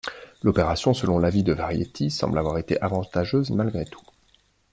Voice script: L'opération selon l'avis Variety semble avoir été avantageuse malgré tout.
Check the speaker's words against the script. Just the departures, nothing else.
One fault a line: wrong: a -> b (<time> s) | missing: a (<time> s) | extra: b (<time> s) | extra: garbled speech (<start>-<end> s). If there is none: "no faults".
extra: de (1.4 s)